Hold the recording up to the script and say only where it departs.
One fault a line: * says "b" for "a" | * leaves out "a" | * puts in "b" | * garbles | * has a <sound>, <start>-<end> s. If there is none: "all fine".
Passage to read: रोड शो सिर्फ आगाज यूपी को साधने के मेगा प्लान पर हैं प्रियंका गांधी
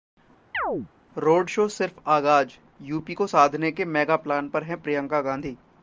* has a chirp, 0.5-0.9 s